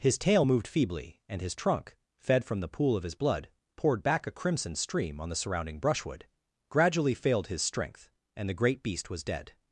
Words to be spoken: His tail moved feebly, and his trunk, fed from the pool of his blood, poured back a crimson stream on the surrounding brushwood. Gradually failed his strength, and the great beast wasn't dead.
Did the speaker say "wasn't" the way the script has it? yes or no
no